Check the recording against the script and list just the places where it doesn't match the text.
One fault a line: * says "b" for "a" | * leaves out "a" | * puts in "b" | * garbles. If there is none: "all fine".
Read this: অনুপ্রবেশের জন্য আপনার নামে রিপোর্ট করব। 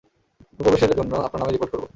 all fine